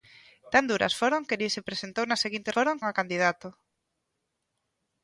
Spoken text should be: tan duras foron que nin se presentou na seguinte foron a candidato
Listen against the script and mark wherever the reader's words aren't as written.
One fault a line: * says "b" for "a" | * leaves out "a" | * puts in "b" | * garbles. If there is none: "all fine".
all fine